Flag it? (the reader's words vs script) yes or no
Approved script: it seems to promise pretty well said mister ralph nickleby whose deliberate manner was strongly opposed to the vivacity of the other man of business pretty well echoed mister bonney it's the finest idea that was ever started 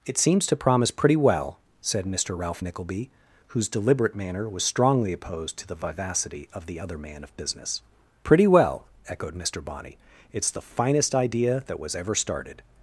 no